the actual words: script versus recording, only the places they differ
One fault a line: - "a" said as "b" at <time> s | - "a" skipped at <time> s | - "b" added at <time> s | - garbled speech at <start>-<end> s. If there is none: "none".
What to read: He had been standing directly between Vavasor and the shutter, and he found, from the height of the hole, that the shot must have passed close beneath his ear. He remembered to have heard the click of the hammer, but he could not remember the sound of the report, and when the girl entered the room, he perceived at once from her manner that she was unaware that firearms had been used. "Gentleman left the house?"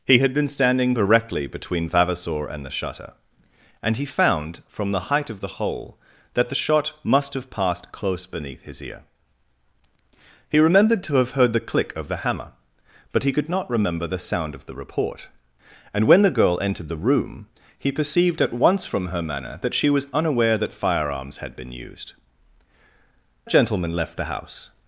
none